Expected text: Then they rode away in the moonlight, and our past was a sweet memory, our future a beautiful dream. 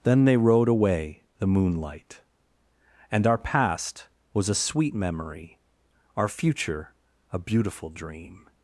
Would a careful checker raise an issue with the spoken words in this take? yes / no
yes